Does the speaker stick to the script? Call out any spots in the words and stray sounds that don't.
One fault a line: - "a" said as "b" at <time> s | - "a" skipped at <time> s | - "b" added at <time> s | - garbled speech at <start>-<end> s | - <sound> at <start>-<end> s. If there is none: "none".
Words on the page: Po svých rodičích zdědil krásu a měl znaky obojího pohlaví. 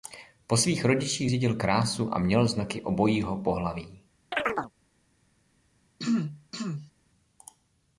- chirp at 4.3-4.7 s
- throat clearing at 6.0-6.9 s